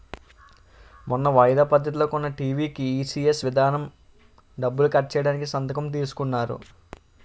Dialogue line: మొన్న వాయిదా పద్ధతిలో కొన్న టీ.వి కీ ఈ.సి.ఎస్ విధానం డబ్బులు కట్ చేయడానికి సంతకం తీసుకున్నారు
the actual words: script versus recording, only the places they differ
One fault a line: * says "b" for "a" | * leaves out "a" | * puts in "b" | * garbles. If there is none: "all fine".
all fine